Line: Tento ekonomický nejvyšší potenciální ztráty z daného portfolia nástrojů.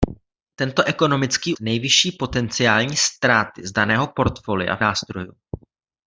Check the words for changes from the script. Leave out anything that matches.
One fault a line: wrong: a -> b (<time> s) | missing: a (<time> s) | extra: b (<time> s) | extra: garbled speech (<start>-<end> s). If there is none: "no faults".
no faults